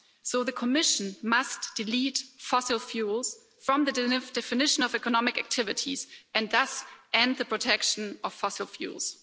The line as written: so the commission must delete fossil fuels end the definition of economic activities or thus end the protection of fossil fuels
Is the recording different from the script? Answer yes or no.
yes